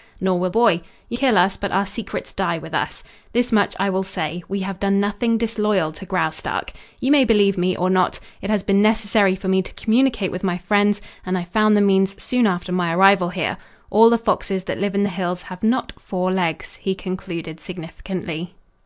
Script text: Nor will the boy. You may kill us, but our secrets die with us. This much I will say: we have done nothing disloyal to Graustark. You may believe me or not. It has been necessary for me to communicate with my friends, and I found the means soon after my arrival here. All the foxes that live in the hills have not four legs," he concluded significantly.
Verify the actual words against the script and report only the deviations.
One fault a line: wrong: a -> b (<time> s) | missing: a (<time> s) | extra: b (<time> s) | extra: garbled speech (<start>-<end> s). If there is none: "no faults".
missing: the (0.5 s)
missing: may (1.2 s)